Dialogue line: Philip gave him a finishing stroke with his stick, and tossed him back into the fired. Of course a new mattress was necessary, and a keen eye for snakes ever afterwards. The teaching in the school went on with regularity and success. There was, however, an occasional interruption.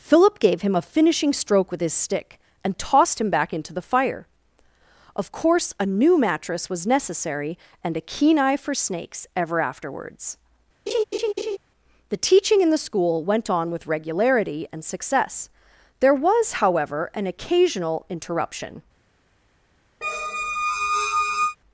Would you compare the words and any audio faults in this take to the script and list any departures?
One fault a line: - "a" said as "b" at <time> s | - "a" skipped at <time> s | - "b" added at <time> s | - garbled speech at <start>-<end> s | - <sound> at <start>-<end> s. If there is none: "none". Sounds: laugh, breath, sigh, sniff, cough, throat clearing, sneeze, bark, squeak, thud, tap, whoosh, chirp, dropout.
- "fired" said as "fire" at 3.8 s
- laugh at 10.9-11.6 s
- squeak at 20.0-21.6 s